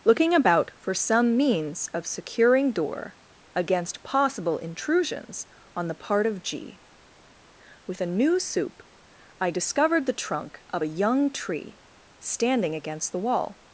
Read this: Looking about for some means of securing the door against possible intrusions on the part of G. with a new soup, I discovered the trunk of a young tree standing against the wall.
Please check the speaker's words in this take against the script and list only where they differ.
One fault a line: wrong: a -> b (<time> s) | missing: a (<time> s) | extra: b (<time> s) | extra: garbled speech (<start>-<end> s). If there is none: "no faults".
missing: the (2.7 s)